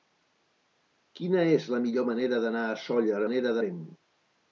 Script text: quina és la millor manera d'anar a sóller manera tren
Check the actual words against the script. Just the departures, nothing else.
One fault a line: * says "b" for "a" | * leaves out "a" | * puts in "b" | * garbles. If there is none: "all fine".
all fine